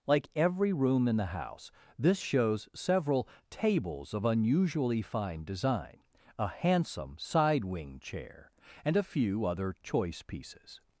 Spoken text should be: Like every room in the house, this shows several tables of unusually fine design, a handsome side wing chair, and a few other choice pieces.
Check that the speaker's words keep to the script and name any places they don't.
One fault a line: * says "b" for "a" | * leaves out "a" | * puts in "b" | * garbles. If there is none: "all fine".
all fine